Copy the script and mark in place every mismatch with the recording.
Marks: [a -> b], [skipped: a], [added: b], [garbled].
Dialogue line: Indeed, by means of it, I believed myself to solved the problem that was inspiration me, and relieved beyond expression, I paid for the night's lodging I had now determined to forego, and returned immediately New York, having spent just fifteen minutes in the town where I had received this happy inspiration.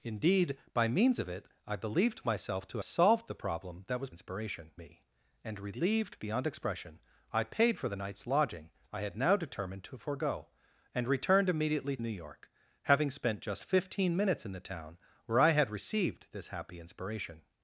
Indeed, by means of it, I believed myself to solved the problem that was inspiration me, and relieved beyond expression, I paid for the night's lodging I had now determined to forego, and returned immediately New York, having spent just fifteen minutes in the town where I had received this happy inspiration.